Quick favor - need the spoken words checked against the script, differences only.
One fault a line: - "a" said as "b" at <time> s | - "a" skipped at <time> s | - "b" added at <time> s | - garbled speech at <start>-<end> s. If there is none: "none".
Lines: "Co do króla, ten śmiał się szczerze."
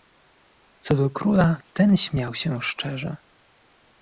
none